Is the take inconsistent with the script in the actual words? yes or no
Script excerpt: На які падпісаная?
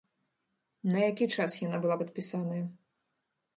yes